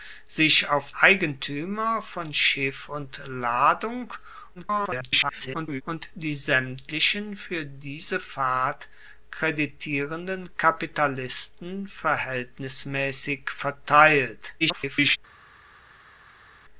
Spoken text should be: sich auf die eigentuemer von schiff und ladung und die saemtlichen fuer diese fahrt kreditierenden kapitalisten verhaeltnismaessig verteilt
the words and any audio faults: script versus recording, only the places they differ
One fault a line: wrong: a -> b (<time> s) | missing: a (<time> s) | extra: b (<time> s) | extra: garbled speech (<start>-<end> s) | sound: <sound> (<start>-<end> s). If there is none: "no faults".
missing: die (0.9 s)
extra: garbled speech (4.5-5.8 s)
extra: garbled speech (14.6-15.2 s)